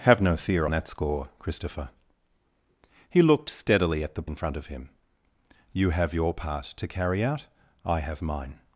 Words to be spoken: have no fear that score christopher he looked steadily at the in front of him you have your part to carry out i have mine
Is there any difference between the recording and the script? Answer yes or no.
no